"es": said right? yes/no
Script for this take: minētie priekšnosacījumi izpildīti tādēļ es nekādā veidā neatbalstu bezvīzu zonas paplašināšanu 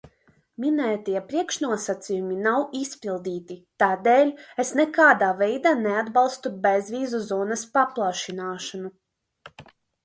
yes